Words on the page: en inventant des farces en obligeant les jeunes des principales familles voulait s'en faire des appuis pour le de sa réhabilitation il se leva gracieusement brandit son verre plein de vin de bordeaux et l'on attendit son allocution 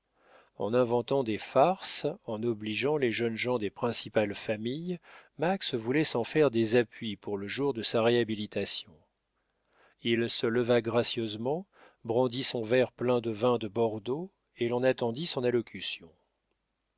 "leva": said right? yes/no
yes